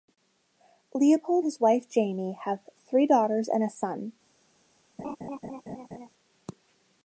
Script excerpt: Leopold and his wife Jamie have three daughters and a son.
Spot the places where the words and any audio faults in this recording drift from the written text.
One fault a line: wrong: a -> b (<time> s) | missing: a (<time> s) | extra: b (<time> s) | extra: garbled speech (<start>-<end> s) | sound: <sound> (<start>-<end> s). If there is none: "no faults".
missing: and (1.4 s)
sound: laugh (5.0-6.1 s)